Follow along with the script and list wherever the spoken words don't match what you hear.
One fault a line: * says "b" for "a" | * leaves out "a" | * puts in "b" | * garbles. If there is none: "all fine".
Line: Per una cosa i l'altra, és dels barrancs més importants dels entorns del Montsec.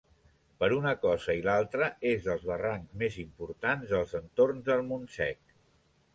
all fine